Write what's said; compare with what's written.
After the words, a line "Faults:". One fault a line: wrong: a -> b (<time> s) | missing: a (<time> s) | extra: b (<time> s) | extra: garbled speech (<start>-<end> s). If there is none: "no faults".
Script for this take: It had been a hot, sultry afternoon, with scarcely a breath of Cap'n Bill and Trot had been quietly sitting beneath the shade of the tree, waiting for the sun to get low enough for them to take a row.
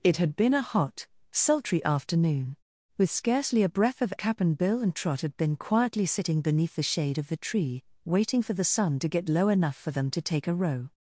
It had been a hot, sultry afternoon, with scarcely a breath of Cap'n Bill and Trot had been quietly sitting beneath the shade of the tree, waiting for the sun to get low enough for them to take a row.
Faults:
no faults